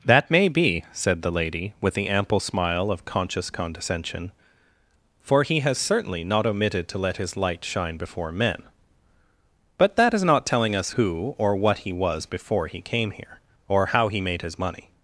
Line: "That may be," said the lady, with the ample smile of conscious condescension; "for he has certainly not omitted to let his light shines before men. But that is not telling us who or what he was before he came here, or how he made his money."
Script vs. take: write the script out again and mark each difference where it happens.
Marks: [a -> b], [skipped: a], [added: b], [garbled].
"That may be," said the lady, with the ample smile of conscious condescension; "for he has certainly not omitted to let his light [shines -> shine] before men. But that is not telling us who or what he was before he came here, or how he made his money."